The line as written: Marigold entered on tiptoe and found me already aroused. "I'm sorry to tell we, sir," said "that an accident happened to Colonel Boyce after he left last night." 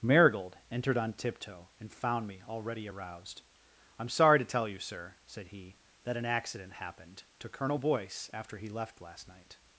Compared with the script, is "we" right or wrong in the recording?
wrong